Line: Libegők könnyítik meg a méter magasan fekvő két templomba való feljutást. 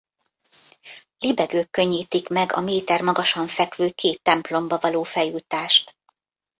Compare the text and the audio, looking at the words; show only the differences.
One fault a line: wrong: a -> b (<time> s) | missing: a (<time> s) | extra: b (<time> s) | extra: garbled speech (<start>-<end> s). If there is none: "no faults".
no faults